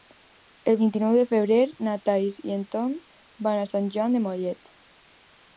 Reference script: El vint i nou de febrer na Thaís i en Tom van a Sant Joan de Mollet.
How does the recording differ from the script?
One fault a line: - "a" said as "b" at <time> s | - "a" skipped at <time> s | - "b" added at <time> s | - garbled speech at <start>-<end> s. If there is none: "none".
none